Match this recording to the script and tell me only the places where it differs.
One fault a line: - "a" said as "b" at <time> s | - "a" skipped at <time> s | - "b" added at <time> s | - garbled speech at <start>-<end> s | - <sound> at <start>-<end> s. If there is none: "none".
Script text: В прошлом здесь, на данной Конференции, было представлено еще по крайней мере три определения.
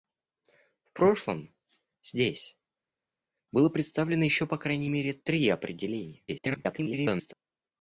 - "на данной Конференции" skipped at 2.6 s
- garbled speech at 6.3-7.3 s